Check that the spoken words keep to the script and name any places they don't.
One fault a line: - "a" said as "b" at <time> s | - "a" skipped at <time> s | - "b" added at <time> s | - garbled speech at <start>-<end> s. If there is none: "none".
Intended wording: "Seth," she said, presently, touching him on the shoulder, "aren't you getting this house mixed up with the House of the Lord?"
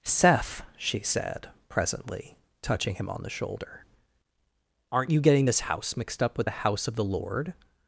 none